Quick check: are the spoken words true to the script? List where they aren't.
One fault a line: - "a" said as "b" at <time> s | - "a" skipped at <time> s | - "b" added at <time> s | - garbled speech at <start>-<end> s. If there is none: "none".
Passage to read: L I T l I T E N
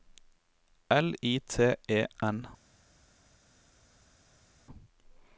- "l I T" skipped at 1.8 s